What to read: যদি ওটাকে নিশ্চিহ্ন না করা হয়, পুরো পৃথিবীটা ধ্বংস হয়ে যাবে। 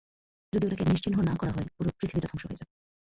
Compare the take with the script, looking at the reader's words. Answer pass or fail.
pass